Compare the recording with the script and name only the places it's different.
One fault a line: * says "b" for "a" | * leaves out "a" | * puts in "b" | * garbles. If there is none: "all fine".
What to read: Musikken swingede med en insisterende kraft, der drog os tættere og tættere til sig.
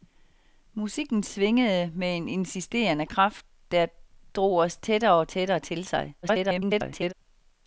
* garbles